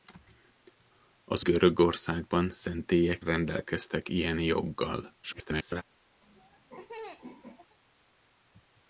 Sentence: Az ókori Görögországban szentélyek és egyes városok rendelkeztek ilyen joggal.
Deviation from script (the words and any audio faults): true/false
true